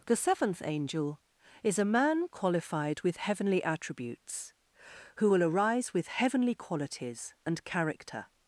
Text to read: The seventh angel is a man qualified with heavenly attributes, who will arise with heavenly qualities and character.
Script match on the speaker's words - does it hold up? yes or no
yes